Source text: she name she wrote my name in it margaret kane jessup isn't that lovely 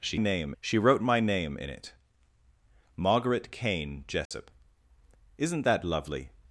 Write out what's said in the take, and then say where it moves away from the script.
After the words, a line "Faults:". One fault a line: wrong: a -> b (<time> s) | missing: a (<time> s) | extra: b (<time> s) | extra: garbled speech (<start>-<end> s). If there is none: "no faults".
she name she wrote my name in it margaret kane jessup isn't that lovely
Faults:
no faults